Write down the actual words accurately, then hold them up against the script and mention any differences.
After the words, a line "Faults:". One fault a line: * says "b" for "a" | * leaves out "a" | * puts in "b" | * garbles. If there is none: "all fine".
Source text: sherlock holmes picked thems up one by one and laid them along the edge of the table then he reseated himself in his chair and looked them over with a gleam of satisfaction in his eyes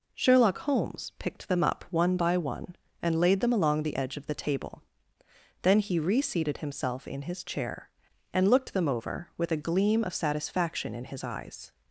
sherlock holmes picked them up one by one and laid them along the edge of the table then he reseated himself in his chair and looked them over with a gleam of satisfaction in his eyes
Faults:
* says "them" for "thems"